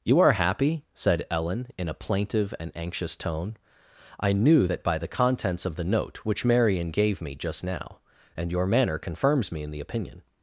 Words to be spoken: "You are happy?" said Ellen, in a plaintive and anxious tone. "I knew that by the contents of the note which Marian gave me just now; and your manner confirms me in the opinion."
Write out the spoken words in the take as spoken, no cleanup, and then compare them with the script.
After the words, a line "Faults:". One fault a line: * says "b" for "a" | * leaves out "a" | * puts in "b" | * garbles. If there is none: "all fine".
"You are happy?" said Ellen, in a plaintive and anxious tone. "I knew that by the contents of the note which Marian gave me just now; and your manner confirms me in the opinion."
Faults:
all fine